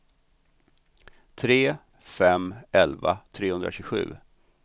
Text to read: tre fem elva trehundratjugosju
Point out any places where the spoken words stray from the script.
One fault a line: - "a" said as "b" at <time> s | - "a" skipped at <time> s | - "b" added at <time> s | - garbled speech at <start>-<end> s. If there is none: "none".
none